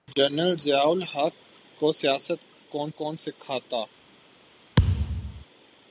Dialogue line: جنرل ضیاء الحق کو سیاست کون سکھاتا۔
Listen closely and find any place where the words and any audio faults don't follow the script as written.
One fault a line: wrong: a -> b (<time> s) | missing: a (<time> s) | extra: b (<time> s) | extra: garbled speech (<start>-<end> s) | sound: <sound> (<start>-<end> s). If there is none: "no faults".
extra: کون (3.0 s)
sound: thud (4.8-5.4 s)